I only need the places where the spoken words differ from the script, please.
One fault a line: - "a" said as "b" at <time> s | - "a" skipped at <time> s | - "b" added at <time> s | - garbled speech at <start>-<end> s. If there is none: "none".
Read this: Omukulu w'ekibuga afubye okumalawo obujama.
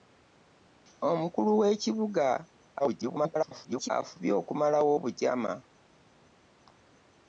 - garbled speech at 2.8-3.9 s